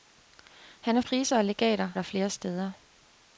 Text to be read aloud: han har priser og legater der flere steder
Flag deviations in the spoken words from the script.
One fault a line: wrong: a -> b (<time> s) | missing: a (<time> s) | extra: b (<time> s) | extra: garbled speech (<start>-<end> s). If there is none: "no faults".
no faults